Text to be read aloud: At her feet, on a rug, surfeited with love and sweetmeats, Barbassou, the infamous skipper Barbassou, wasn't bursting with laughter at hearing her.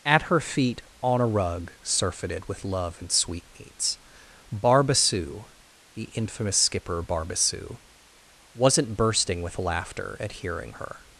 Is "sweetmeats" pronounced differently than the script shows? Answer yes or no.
no